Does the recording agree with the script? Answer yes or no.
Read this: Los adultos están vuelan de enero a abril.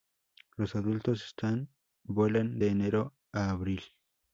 yes